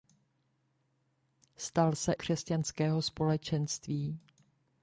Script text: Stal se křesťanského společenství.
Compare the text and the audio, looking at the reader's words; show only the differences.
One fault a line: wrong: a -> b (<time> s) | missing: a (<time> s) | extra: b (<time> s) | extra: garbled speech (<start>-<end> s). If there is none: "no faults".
no faults